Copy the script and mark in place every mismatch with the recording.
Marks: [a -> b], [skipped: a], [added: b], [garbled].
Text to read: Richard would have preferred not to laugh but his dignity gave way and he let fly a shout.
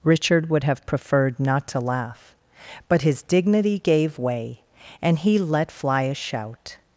Richard would have preferred not to laugh but his dignity gave way and he let fly a shout.